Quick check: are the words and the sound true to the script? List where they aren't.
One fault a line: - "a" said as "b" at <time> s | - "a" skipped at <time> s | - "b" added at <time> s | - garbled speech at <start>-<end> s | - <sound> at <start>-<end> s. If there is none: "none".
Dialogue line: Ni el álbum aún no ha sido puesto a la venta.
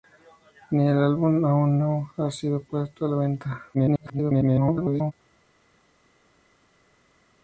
- garbled speech at 3.7-5.1 s